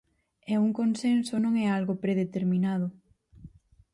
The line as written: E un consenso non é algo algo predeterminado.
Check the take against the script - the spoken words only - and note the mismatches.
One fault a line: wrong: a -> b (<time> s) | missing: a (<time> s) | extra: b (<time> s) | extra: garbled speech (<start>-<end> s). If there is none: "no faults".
missing: algo (1.9 s)